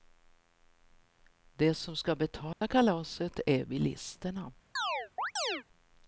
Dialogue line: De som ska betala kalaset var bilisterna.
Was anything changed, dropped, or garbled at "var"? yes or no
yes